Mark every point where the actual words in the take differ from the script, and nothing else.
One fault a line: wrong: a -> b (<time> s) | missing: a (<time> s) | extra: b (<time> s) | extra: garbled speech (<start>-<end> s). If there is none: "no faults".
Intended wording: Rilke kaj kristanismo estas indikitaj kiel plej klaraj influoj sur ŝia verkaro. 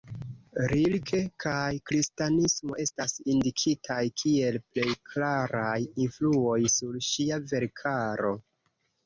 no faults